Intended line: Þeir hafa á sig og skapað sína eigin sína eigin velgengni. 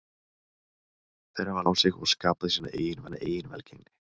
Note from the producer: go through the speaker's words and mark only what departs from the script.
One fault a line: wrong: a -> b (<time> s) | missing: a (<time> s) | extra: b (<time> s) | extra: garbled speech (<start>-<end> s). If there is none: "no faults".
no faults